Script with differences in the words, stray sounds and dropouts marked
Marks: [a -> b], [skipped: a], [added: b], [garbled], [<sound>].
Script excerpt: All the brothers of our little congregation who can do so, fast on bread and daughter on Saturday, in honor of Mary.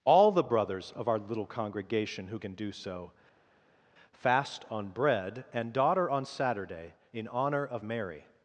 All the brothers of our little congregation who can do so, fast on bread and daughter on Saturday, in honor of Mary.